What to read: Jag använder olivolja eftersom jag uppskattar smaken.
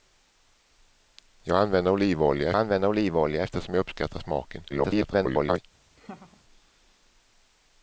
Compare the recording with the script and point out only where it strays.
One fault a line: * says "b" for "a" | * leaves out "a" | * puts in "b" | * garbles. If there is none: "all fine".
* puts in "använder olivolja"
* garbles